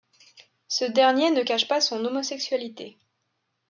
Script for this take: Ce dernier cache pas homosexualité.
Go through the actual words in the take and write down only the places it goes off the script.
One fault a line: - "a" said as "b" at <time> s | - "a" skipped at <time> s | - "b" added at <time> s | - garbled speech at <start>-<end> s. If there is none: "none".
- "ne" added at 1.3 s
- "son" added at 1.8 s